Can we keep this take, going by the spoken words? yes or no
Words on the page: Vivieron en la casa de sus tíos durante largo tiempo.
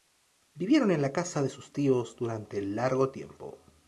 yes